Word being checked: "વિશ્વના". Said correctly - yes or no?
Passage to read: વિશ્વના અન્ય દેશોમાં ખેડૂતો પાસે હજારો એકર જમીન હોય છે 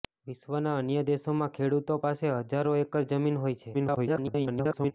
yes